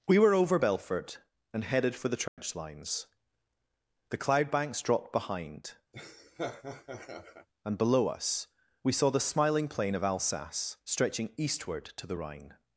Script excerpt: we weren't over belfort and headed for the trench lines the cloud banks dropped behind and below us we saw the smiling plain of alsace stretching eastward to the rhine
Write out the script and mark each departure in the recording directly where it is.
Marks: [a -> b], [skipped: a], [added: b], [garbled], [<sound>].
we [weren't -> were] over belfort and headed for the trench [dropout] lines the cloud banks dropped behind [laugh] and below us we saw the smiling plain of alsace stretching eastward to the rhine